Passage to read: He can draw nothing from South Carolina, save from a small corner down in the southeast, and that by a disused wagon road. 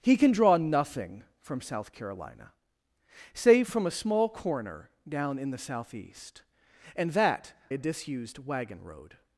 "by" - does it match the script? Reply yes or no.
no